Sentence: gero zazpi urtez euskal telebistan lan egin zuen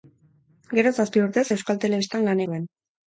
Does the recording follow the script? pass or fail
fail